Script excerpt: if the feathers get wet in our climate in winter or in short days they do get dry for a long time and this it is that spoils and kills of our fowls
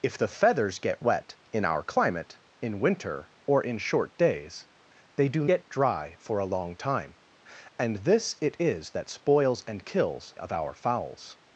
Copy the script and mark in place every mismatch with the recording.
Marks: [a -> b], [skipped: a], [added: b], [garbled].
if the feathers get wet in our climate in winter or in short days they do get dry for a long time and this it is that spoils and kills of our fowls